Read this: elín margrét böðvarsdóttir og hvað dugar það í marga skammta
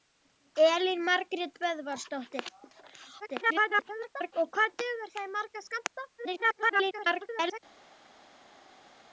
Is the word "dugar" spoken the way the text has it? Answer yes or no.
yes